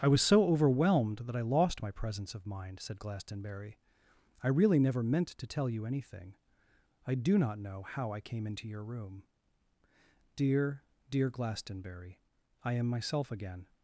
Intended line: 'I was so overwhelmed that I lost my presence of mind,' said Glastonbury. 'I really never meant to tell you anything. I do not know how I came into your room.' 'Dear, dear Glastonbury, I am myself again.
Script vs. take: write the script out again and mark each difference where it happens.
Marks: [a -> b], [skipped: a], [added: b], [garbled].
'I was so overwhelmed that I lost my presence of mind,' said Glastonbury. 'I really never meant to tell you anything. I do not know how I came into your room.' 'Dear, dear Glastonbury, I am myself again.